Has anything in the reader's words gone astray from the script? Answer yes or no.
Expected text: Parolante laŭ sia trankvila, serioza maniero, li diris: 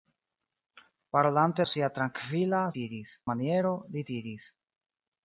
yes